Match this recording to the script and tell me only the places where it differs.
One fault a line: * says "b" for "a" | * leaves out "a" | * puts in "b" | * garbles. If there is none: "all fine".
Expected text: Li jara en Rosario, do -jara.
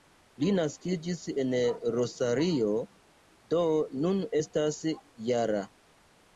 * says "naskiĝis" for "jara"
* puts in "nun estas"